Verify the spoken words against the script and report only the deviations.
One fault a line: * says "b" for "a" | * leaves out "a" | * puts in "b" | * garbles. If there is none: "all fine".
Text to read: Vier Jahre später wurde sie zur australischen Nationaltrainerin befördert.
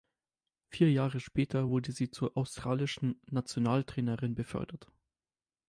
all fine